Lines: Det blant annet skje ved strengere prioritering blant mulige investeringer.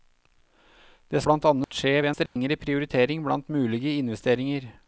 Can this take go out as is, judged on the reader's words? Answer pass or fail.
pass